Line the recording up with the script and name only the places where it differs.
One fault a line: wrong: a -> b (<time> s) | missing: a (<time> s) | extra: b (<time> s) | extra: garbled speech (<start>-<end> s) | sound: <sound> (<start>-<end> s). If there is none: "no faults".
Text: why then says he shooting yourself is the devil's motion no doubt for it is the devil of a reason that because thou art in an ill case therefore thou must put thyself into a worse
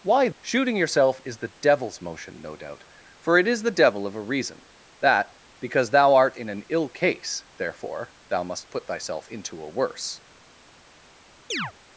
missing: then says he (0.3 s)
sound: chirp (11.5-11.7 s)